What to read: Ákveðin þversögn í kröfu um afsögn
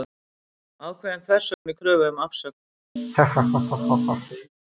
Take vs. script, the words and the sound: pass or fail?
fail